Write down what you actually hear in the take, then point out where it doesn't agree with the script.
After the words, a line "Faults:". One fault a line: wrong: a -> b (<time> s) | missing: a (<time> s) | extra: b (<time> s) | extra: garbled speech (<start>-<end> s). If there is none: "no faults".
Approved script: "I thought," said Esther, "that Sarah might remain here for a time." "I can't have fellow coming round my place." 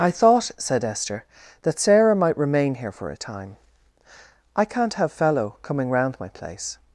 "I thought," said Esther, "that Sarah might remain here for a time." "I can't have fellow coming round my place."
Faults:
no faults